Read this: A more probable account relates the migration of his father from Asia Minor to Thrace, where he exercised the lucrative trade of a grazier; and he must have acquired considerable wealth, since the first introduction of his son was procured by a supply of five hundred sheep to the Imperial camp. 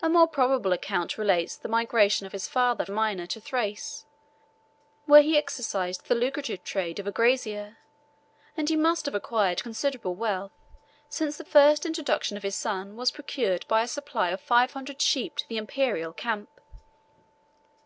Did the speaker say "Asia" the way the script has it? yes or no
no